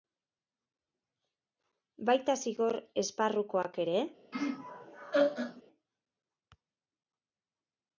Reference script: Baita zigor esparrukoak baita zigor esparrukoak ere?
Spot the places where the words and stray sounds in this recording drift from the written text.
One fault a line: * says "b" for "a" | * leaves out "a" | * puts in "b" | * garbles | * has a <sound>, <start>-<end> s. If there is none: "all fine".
* leaves out "baita zigor esparrukoak"
* has a laugh, 4.3-5.6 s